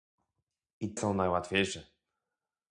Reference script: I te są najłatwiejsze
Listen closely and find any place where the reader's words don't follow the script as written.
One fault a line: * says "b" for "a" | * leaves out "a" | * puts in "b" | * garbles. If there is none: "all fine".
* leaves out "te"